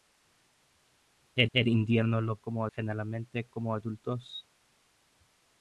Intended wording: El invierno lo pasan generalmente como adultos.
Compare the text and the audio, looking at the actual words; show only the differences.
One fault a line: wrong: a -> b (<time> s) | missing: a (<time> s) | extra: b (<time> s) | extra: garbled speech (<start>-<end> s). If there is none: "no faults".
extra: el (1.5 s)
wrong: pasan -> como (2.3 s)